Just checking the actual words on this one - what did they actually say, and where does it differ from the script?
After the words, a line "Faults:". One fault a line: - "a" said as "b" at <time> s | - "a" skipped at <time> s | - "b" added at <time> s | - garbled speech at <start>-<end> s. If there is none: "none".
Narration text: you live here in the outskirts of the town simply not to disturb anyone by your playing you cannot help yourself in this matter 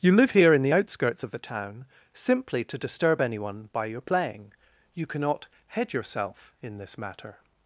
you live here in the outskirts of the town simply to disturb anyone by your playing you cannot head yourself in this matter
Faults:
- "not" skipped at 2.6 s
- "help" said as "head" at 5.7 s